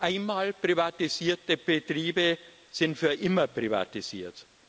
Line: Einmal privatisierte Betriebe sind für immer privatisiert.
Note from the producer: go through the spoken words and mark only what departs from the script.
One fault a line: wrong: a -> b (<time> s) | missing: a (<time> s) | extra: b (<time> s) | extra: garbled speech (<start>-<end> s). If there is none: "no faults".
no faults